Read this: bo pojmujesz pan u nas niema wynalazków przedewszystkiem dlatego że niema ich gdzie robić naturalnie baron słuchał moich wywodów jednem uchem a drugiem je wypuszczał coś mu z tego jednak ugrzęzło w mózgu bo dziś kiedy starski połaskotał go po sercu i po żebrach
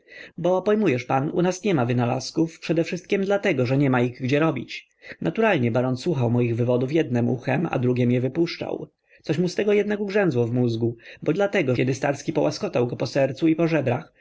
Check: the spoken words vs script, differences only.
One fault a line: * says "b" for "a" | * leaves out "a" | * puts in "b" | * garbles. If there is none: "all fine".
* says "dlatego" for "dziś"